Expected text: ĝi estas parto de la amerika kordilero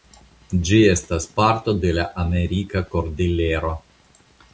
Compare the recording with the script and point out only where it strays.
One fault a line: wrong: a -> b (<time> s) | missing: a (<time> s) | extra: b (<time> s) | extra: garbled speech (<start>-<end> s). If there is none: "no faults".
no faults